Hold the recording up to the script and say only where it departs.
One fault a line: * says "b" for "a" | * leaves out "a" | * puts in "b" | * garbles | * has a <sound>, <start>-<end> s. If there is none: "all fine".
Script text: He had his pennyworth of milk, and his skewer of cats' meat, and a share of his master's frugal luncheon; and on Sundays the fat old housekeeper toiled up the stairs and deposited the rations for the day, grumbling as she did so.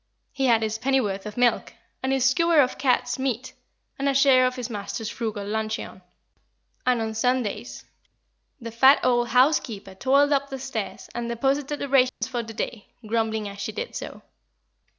* has a dropout, 12.1-12.2 s